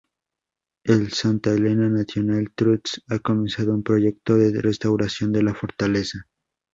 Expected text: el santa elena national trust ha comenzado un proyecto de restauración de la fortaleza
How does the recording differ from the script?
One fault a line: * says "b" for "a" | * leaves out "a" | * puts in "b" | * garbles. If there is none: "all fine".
all fine